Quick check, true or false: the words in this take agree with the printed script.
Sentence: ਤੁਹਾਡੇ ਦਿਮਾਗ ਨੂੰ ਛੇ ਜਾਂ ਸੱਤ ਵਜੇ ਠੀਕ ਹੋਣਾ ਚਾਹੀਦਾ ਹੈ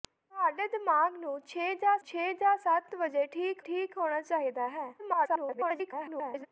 false